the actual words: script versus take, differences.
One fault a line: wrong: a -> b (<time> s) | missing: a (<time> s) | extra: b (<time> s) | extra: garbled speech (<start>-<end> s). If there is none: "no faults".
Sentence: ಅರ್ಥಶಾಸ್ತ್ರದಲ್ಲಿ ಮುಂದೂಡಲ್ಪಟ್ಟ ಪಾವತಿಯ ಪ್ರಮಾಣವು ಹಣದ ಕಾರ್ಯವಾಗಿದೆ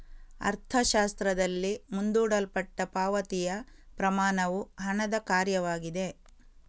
no faults